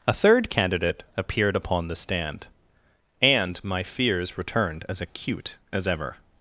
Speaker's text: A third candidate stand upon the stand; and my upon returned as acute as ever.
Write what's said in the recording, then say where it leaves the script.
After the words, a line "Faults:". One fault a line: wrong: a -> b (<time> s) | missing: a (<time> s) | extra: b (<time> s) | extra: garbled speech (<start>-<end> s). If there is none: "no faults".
A third candidate appeared upon the stand; and my fears returned as acute as ever.
Faults:
wrong: stand -> appeared (1.2 s)
wrong: upon -> fears (3.8 s)